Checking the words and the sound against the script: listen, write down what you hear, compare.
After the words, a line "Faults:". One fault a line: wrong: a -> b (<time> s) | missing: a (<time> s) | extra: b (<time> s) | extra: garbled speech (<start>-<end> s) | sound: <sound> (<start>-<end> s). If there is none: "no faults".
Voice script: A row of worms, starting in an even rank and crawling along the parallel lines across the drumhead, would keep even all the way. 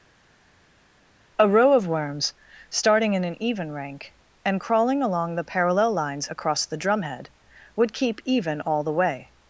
A row of worms, starting in an even rank and crawling along the parallel lines across the drumhead, would keep even all the way.
Faults:
no faults